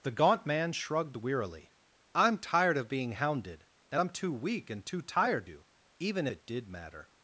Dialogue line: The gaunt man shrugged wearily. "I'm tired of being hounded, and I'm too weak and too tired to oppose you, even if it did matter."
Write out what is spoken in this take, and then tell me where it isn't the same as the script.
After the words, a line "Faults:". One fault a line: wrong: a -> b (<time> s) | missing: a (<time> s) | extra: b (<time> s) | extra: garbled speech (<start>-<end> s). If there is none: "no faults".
The gaunt man shrugged wearily. "I'm tired of being hounded, and I'm too weak and too tired you, even it did matter."
Faults:
missing: to oppose (5.5 s)
missing: if (6.3 s)